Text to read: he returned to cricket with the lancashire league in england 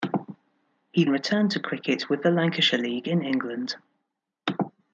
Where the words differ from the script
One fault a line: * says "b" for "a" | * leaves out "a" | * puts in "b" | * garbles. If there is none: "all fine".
all fine